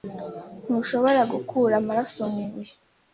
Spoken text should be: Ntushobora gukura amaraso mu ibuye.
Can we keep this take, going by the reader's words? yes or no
yes